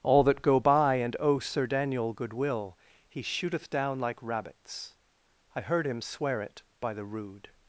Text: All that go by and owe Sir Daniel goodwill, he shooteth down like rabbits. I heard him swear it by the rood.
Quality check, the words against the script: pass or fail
pass